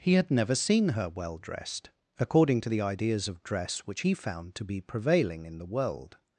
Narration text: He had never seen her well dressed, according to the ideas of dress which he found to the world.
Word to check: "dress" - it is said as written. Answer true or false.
true